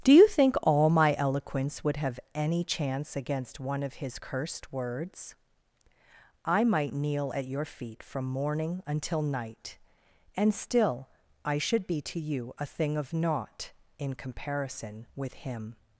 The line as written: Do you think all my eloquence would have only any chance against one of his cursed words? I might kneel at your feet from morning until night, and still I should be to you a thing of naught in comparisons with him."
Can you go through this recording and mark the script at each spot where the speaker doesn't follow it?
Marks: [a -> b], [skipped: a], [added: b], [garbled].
Do you think all my eloquence would have [skipped: only] any chance against one of his cursed words? I might kneel at your feet from morning until night, and still I should be to you a thing of naught in [comparisons -> comparison] with him."